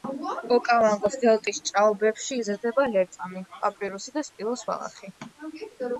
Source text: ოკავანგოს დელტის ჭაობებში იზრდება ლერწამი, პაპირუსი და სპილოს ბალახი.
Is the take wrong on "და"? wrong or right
right